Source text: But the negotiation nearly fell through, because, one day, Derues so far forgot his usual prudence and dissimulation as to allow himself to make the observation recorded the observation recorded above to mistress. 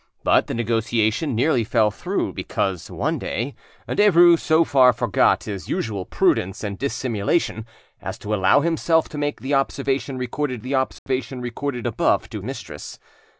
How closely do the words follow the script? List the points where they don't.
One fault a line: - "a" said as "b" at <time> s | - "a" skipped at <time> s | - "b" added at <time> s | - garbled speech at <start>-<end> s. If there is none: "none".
none